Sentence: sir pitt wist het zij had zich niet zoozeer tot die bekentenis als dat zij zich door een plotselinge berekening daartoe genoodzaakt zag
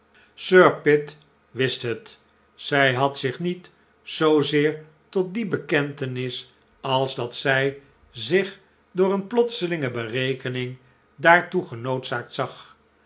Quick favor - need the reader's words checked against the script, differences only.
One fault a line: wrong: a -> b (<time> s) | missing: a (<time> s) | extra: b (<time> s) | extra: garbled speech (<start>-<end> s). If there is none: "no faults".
no faults